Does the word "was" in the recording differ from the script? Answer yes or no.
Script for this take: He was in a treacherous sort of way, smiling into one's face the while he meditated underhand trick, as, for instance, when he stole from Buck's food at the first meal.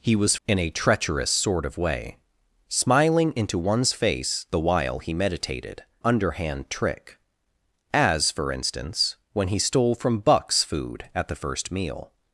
no